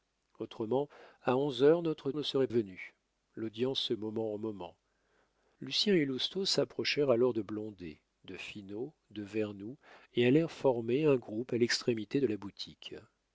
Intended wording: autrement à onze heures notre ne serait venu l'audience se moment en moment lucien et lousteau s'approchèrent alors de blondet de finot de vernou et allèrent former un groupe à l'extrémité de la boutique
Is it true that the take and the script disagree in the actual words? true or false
false